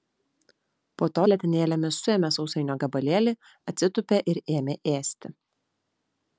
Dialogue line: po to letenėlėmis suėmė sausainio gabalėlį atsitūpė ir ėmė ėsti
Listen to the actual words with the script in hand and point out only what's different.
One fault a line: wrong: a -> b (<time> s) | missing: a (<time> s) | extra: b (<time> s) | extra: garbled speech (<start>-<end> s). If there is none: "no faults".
no faults